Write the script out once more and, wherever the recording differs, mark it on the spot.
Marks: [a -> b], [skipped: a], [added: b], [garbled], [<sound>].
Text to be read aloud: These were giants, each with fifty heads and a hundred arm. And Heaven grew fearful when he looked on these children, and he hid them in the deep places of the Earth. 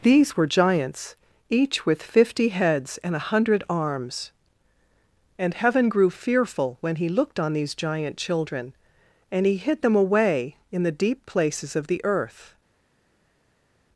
These were giants, each with fifty heads and a hundred [arm. -> arms] And Heaven grew fearful when he looked on these [added: giant] children, and he hid them [added: away] in the deep places of the Earth.